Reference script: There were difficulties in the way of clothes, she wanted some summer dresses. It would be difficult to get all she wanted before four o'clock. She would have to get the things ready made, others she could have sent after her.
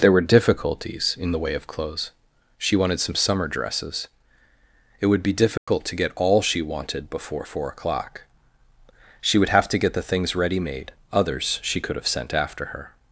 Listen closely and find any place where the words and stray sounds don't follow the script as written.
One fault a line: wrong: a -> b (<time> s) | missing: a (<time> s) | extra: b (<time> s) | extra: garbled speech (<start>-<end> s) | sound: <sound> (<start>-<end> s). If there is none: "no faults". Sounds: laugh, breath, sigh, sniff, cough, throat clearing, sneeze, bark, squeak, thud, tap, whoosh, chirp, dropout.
sound: dropout (5.6-5.7 s)